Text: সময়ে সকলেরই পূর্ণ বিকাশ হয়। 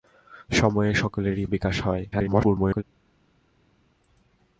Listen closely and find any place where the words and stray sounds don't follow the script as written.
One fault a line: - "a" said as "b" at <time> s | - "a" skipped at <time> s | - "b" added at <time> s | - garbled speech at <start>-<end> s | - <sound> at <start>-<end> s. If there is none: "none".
- "পূর্ণ" skipped at 1.4 s
- garbled speech at 2.1-2.8 s